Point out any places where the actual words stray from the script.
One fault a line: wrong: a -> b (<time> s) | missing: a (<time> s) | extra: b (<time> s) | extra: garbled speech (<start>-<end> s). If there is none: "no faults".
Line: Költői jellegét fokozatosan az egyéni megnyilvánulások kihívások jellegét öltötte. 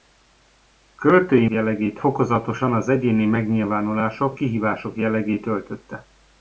no faults